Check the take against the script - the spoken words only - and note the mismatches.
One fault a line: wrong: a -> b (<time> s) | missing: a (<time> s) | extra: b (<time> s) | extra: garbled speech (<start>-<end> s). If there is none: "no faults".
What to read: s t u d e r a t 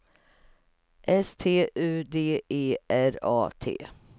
no faults